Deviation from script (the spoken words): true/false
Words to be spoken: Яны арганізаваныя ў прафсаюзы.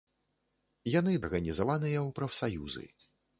false